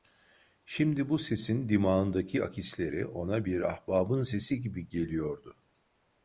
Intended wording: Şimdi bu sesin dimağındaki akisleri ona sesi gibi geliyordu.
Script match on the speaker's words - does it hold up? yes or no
no